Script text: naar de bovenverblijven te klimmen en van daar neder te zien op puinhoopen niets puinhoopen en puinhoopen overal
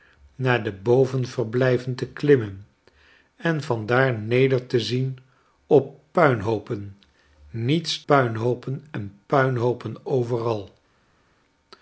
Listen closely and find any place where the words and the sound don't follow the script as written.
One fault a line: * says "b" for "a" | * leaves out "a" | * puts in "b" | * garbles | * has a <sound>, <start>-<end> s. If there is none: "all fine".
all fine